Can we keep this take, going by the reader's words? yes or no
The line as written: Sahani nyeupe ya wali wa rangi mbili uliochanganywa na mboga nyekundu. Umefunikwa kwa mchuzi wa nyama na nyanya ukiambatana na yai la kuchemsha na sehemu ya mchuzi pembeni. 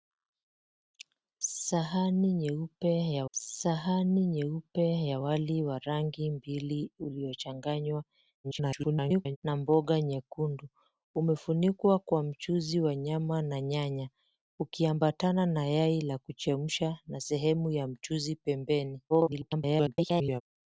no